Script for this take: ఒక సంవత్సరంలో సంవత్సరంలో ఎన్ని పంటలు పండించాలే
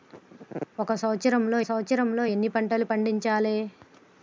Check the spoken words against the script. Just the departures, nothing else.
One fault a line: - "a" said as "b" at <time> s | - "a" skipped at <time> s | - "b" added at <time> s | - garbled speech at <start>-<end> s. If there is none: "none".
none